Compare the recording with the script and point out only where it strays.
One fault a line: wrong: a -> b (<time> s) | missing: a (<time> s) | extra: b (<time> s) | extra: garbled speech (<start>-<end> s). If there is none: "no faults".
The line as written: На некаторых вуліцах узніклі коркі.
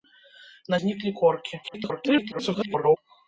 missing: некаторых вуліцах (0.8 s)
extra: garbled speech (1.6-3.0 s)